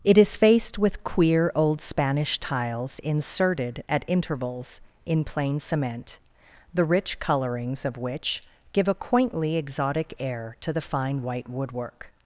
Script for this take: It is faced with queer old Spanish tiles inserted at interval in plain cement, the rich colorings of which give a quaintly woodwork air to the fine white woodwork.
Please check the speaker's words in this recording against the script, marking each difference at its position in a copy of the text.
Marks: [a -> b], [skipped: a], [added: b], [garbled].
It is faced with queer old Spanish tiles inserted at [interval -> intervals] in plain cement, the rich colorings of which give a quaintly [woodwork -> exotic] air to the fine white woodwork.